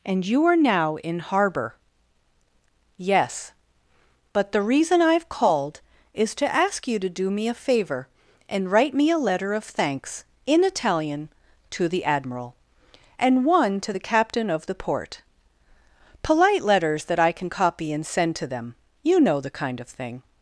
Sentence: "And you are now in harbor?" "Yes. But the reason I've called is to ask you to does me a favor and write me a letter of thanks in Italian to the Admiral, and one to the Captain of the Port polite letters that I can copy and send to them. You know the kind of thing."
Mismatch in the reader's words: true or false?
true